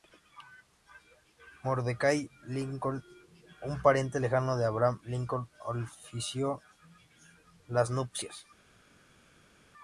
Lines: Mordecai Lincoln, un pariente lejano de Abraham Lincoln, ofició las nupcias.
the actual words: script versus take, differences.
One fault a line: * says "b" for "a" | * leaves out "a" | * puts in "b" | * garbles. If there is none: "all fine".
all fine